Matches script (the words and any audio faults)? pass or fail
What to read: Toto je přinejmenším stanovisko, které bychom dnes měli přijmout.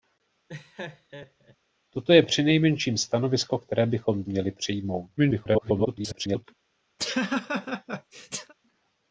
fail